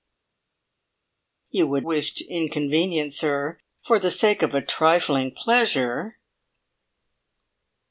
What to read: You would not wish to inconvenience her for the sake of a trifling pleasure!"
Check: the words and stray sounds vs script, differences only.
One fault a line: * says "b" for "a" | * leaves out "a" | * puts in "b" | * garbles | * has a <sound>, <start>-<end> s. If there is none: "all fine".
* leaves out "not"